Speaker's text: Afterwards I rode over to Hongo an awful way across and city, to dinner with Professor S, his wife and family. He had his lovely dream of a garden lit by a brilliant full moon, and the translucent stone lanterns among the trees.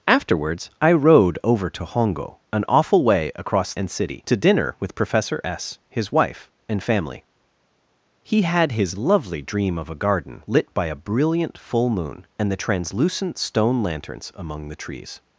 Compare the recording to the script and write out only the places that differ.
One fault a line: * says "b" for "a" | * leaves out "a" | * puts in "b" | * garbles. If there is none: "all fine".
all fine